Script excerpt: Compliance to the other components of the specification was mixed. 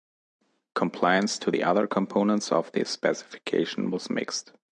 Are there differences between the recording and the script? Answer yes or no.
no